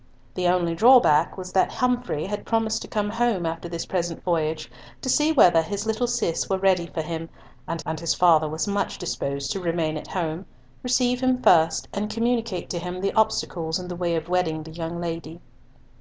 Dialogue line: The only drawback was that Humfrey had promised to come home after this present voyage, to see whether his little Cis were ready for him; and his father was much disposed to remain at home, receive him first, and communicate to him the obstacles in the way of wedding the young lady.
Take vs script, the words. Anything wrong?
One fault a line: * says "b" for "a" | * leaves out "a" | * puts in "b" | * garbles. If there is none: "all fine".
* puts in "and"